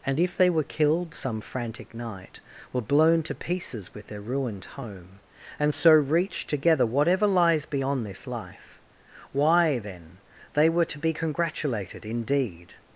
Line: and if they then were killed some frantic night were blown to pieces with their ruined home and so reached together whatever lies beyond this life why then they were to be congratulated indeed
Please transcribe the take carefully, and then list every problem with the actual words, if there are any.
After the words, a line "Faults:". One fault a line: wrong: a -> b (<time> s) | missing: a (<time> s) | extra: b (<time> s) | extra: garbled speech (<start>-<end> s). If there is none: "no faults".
and if they were killed some frantic night were blown to pieces with their ruined home and so reached together whatever lies beyond this life why then they were to be congratulated indeed
Faults:
missing: then (0.5 s)